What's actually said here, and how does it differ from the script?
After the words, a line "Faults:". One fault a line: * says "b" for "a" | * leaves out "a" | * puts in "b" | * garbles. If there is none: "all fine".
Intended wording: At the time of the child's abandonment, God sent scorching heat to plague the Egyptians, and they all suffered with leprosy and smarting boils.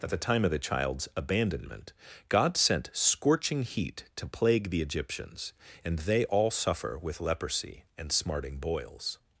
At the time of the child's abandonment, God sent scorching heat to plague the Egyptians, and they all suffer with leprosy and smarting boils.
Faults:
* says "suffer" for "suffered"